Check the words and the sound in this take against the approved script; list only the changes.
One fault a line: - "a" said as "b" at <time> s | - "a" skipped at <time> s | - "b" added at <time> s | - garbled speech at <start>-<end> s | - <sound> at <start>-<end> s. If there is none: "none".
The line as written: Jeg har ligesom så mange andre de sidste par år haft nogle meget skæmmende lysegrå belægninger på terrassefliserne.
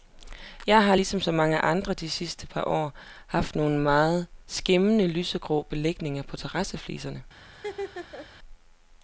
- laugh at 7.5-8.3 s